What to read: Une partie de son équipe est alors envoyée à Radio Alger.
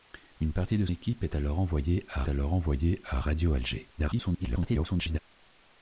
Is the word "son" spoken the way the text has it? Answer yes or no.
no